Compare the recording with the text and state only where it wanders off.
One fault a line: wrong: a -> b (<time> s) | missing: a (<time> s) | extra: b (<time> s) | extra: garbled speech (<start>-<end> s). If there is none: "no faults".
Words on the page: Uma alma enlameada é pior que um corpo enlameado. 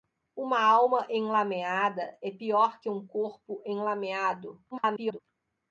extra: garbled speech (4.7-5.2 s)